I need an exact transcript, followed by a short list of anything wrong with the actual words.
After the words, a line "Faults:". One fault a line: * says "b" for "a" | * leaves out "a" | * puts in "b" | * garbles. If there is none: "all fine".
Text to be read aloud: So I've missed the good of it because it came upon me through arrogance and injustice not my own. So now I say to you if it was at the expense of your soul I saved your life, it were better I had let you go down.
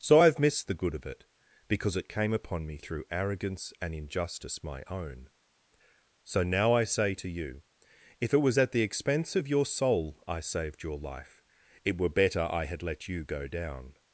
So I've missed the good of it because it came upon me through arrogance and injustice my own. So now I say to you if it was at the expense of your soul I saved your life, it were better I had let you go down.
Faults:
* leaves out "not"